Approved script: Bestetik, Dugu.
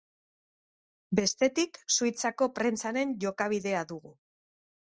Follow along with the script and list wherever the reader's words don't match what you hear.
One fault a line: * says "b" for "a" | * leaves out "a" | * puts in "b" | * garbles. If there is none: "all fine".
* puts in "Suitzako prentsaren jokabidea"